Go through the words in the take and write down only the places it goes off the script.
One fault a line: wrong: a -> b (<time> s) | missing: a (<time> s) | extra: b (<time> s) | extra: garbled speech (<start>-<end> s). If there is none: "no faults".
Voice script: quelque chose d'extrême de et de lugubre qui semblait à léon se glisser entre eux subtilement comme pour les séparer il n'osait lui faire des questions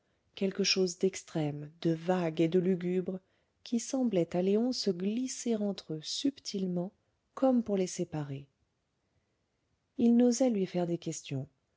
extra: vague (1.9 s)